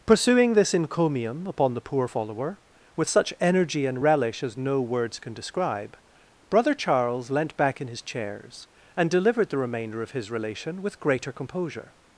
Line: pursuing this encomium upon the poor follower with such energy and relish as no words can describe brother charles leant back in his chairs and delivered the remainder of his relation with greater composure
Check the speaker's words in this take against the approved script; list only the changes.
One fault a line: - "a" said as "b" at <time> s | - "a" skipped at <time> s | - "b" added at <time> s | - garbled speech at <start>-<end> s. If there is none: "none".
none